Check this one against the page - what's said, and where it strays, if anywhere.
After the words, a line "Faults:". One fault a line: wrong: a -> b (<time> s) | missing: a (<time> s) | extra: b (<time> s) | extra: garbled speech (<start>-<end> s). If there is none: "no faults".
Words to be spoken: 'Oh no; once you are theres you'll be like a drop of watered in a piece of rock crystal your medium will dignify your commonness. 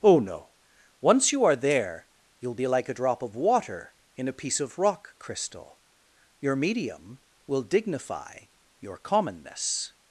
'Oh no; once you are there you'll be like a drop of water in a piece of rock crystal your medium will dignify your commonness.
Faults:
wrong: theres -> there (1.6 s)
wrong: watered -> water (3.4 s)